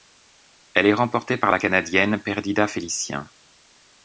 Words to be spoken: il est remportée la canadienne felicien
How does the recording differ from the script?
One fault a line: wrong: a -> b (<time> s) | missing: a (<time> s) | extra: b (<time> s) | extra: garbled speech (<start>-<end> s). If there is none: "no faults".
wrong: il -> elle (0.7 s)
extra: par (1.4 s)
extra: perdita (2.2 s)